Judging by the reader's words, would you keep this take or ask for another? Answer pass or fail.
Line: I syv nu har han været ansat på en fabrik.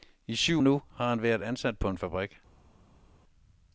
pass